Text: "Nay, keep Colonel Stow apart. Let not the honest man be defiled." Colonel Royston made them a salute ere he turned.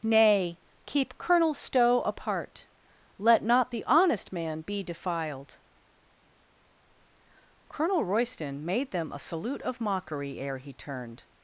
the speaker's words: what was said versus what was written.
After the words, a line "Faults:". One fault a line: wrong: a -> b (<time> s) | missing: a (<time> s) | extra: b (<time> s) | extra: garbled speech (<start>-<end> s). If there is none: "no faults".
"Nay, keep Colonel Stow apart. Let not the honest man be defiled." Colonel Royston made them a salute of mockery ere he turned.
Faults:
extra: of mockery (9.6 s)